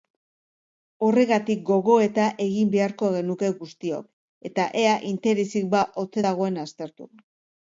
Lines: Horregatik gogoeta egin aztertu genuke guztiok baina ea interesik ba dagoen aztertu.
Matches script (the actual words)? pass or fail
fail